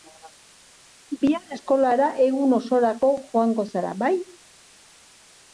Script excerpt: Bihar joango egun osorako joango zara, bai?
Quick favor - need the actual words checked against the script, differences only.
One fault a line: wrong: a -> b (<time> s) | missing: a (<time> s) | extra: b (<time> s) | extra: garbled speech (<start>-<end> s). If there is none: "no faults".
wrong: joango -> eskolara (1.5 s)